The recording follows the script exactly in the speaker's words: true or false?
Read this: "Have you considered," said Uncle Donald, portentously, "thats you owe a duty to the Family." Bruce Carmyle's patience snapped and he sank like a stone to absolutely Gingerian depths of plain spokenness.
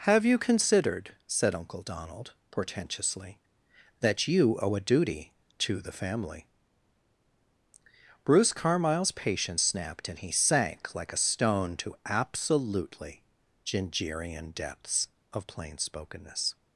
false